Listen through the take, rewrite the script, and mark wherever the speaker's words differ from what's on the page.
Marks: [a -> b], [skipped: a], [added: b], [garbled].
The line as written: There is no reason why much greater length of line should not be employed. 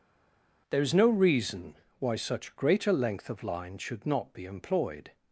There is no reason why [much -> such] greater length of line should not be employed.